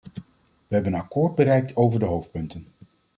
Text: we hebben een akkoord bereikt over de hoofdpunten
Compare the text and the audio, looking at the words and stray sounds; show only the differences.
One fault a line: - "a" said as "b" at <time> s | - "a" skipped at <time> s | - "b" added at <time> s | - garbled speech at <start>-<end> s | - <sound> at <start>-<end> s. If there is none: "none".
none